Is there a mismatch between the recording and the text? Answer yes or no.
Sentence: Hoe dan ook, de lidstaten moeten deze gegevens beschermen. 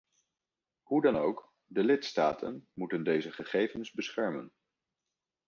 no